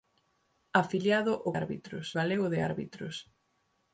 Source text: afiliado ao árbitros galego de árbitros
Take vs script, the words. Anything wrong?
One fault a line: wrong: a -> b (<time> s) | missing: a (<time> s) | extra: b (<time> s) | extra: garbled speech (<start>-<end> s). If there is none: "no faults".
no faults